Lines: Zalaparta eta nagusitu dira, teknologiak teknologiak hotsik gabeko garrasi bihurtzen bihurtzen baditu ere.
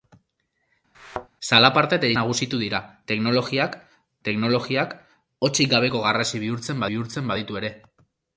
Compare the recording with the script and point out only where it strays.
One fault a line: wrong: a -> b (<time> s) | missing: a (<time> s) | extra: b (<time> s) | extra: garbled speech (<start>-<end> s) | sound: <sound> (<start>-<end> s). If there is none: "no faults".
sound: thud (0.9-1.3 s)